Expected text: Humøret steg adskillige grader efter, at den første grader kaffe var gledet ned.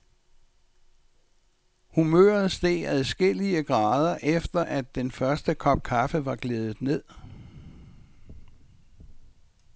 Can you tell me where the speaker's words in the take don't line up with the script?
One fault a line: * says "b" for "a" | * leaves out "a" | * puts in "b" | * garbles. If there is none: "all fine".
* says "kop" for "grader"